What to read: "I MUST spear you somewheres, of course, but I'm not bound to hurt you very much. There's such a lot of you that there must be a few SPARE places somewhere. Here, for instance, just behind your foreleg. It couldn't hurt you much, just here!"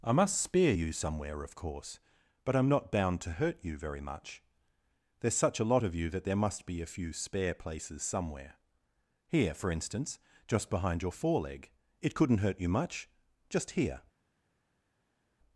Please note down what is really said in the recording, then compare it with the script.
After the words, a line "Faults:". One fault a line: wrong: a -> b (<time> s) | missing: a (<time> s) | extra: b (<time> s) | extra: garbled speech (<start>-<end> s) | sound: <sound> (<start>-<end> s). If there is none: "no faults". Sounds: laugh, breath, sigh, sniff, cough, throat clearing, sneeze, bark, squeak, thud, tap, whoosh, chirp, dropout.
"I MUST spear you somewhere, of course, but I'm not bound to hurt you very much. There's such a lot of you that there must be a few SPARE places somewhere. Here, for instance, just behind your foreleg. It couldn't hurt you much, just here!"
Faults:
wrong: somewheres -> somewhere (0.9 s)